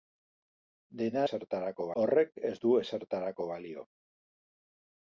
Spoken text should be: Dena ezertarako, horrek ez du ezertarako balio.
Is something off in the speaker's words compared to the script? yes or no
no